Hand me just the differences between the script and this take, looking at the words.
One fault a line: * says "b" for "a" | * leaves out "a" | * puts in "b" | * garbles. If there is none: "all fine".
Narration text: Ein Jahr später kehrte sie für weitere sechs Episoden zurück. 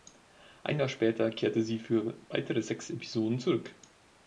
all fine